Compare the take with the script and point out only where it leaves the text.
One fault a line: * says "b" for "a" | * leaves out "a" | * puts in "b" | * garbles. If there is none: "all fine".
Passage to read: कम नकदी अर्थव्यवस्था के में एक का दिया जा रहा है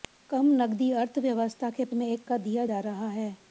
all fine